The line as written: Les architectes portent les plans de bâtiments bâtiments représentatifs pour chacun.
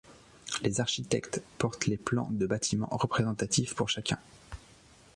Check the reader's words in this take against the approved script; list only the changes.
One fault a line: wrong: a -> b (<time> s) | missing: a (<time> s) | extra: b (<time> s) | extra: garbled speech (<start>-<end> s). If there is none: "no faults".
missing: bâtiments (2.9 s)